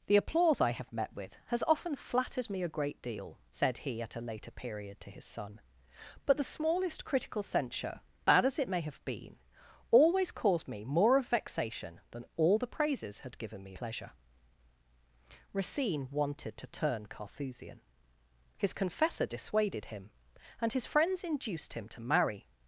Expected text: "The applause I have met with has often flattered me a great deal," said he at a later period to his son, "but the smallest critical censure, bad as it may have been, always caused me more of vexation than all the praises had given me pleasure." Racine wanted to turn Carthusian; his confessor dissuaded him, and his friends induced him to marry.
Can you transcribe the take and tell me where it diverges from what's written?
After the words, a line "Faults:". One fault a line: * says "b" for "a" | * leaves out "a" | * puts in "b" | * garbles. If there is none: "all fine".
"The applause I have met with has often flattered me a great deal," said he at a later period to his son, "but the smallest critical censure, bad as it may have been, always caused me more of vexation than all the praises had given me pleasure." Racine wanted to turn Carthusian; his confessor dissuaded him, and his friends induced him to marry.
Faults:
all fine